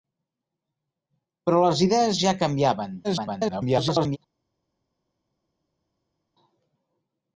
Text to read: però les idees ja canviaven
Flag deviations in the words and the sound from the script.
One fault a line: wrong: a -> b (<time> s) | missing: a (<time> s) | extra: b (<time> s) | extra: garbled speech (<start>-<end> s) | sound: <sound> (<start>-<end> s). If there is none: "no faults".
extra: garbled speech (3.0-4.2 s)